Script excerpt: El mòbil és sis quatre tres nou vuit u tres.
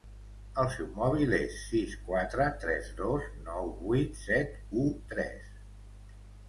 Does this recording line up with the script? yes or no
no